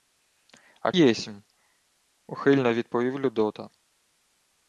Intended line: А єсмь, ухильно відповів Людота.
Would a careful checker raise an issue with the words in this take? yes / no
no